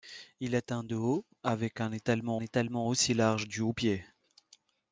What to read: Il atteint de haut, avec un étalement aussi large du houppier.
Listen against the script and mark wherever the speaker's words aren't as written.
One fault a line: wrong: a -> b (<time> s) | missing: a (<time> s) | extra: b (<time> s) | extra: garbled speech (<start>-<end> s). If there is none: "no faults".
extra: étalement (2.4 s)